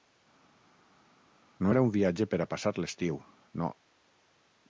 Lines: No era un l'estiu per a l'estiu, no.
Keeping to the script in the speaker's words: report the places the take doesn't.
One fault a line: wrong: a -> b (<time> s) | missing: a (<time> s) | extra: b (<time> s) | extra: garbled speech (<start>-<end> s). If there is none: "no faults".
wrong: l'estiu -> viatge (2.0 s)
extra: passar (2.5 s)